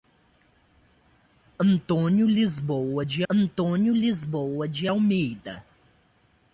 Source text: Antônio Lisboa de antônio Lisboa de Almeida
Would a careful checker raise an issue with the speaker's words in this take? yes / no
no